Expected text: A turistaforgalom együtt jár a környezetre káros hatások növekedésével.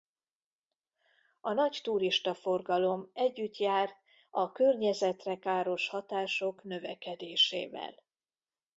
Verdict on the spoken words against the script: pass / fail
fail